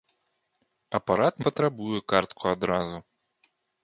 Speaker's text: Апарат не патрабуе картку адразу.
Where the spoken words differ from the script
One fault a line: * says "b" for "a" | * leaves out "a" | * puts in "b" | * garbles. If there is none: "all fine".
* leaves out "не"